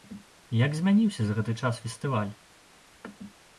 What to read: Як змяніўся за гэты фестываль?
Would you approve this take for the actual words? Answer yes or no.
no